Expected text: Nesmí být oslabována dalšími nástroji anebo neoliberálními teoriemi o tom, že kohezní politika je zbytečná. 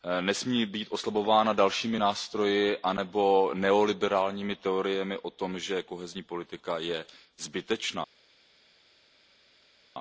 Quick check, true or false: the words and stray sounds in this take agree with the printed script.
true